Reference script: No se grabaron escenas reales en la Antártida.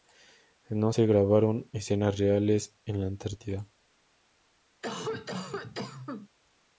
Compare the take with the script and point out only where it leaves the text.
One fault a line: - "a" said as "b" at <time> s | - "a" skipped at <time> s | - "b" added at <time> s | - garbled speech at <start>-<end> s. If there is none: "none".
none